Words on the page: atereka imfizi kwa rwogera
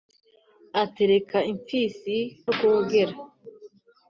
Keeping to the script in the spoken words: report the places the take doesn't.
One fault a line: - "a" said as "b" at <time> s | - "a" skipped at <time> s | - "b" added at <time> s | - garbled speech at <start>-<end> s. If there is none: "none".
- "kwa" skipped at 2.2 s